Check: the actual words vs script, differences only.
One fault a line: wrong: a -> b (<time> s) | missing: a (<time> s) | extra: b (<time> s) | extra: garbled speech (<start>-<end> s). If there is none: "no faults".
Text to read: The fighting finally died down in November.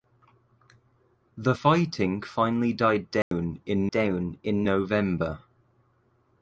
extra: down in (3.9 s)